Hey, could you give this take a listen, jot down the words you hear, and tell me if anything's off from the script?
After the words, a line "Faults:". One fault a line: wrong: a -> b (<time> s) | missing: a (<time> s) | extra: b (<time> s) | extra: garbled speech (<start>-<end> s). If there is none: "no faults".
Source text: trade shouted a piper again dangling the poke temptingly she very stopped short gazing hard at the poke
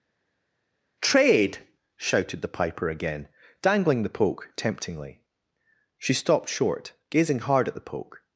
trade shouted the piper again dangling the poke temptingly she stopped short gazing hard at the poke
Faults:
wrong: a -> the (2.4 s)
missing: very (6.1 s)